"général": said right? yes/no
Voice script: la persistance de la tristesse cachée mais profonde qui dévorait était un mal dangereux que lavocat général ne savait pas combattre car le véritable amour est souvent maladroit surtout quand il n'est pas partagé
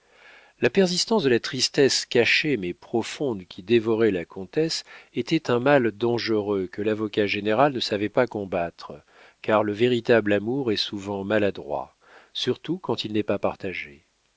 yes